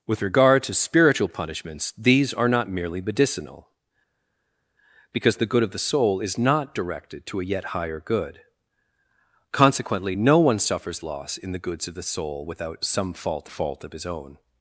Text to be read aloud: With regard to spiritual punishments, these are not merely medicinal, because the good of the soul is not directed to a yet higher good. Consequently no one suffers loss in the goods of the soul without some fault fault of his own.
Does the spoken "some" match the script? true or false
true